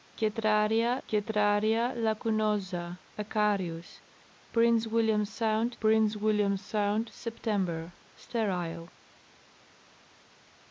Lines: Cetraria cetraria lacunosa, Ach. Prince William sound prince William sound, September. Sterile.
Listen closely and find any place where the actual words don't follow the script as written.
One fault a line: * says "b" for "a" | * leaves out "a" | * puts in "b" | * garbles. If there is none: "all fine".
all fine